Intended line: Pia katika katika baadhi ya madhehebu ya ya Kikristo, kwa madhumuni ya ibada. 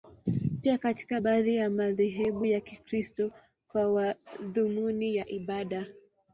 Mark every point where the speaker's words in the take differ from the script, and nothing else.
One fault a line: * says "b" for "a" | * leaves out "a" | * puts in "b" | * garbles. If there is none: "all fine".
* leaves out "katika"
* leaves out "ya"